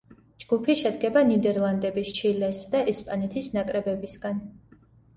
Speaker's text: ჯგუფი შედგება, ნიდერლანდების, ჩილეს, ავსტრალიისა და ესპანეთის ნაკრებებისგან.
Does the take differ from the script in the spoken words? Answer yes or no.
yes